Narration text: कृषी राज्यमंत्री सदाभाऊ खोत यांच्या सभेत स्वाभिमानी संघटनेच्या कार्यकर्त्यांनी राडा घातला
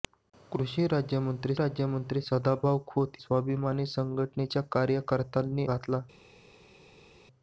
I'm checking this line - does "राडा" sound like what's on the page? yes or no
no